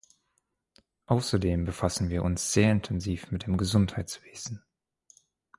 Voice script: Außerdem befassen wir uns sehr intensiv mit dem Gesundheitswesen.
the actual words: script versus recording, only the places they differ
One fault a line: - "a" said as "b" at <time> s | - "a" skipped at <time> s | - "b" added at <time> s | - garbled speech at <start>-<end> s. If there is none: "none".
none